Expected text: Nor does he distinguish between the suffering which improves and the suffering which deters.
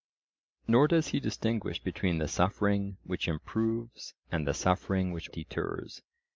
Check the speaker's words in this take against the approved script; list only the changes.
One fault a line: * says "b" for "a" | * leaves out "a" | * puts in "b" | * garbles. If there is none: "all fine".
all fine